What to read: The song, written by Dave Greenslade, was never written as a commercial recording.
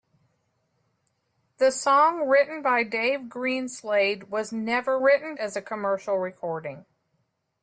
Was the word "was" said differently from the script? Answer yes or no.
no